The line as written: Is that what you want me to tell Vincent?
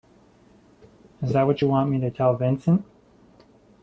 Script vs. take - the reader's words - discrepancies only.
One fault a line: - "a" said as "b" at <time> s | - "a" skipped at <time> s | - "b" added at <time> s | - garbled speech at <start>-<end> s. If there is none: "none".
none